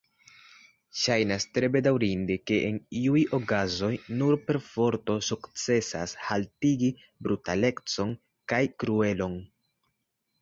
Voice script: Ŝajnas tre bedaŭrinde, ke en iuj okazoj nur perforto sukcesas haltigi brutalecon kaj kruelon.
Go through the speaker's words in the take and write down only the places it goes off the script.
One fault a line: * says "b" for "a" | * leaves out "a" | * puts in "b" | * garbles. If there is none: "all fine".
all fine